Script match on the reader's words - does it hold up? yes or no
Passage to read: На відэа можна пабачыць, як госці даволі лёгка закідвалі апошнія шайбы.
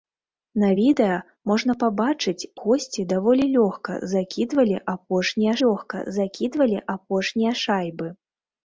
no